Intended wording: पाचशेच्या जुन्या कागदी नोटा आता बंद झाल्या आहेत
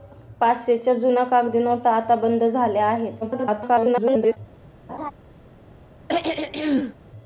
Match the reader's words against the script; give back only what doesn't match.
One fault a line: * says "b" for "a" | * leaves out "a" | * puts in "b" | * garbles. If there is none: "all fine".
* garbles